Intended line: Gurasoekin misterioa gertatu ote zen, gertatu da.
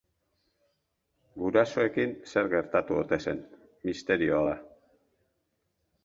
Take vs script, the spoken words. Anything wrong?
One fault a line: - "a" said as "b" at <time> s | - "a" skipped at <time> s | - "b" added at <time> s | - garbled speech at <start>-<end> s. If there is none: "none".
- "misterioa" said as "zer" at 2.3 s
- "gertatu" said as "misterioa" at 3.9 s